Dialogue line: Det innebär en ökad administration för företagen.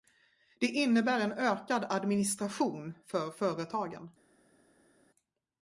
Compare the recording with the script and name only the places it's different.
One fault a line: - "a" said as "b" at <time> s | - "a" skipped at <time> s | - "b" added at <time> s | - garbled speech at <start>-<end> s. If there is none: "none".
none